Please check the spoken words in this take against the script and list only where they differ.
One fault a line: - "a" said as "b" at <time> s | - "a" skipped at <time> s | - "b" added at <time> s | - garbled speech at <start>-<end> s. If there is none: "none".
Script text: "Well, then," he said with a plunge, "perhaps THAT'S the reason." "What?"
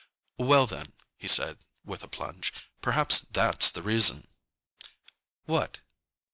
none